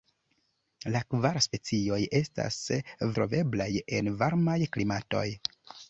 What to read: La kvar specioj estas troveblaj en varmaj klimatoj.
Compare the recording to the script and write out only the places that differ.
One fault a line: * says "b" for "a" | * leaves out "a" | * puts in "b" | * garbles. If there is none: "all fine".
all fine